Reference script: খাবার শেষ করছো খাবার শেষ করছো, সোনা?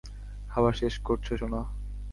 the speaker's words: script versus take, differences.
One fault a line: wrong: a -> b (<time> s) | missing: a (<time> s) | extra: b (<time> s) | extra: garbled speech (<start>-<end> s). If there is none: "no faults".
missing: খাবার শেষ করছো (1.3 s)